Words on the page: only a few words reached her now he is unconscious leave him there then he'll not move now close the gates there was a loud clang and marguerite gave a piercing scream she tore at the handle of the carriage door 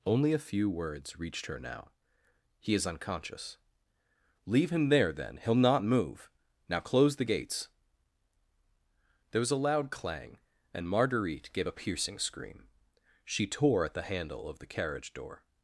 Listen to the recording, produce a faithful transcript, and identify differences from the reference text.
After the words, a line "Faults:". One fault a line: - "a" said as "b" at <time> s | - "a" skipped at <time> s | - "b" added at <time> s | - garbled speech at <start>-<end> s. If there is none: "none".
only a few words reached her now he is unconscious leave him there then he'll not move now close the gates there was a loud clang and marguerite gave a piercing scream she tore at the handle of the carriage door
Faults:
none